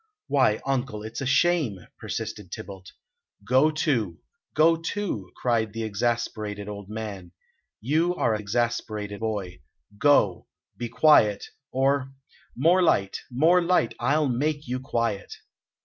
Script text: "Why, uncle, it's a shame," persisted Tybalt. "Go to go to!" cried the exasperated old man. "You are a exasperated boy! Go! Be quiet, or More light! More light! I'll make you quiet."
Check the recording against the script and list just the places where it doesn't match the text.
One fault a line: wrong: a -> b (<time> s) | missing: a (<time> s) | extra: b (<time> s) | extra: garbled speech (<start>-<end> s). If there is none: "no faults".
no faults